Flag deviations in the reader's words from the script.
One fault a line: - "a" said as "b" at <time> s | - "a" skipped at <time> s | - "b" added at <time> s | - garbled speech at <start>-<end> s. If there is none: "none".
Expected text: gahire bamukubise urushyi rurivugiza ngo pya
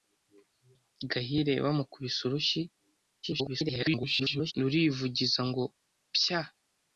- garbled speech at 3.2-4.5 s